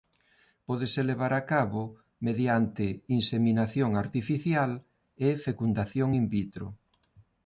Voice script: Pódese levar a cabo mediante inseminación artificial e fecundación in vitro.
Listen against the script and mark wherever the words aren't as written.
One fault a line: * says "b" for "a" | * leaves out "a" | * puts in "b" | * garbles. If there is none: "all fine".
all fine